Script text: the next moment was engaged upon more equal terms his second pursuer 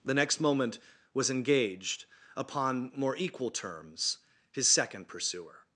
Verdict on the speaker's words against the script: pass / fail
pass